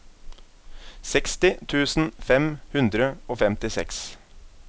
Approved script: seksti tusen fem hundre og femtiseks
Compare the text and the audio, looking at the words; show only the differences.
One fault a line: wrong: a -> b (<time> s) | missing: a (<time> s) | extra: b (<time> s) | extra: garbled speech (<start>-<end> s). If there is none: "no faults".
no faults